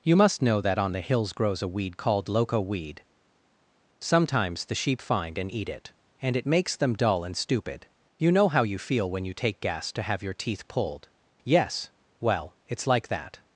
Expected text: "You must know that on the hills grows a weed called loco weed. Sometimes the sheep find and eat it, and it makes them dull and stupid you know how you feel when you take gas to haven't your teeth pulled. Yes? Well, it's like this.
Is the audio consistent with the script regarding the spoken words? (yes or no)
no